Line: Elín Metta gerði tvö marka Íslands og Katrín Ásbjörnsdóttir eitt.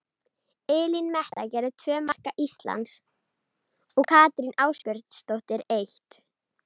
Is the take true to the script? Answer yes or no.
yes